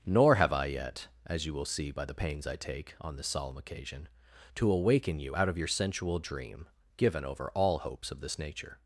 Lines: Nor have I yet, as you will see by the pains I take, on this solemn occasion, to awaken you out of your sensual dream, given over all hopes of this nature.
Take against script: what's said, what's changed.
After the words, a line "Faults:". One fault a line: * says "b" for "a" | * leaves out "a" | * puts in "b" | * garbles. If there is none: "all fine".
Nor have I yet, as you will see by the pains I take, on this solemn occasion, to awaken you out of your sensual dream, given over all hopes of this nature.
Faults:
all fine